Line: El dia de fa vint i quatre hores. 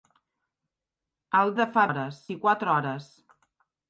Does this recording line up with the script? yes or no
no